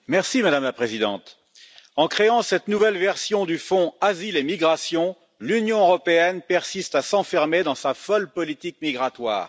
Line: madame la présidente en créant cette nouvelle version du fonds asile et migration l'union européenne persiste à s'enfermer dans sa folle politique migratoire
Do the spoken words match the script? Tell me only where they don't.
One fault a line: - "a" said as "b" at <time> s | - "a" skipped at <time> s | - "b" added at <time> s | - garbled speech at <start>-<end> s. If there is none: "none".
none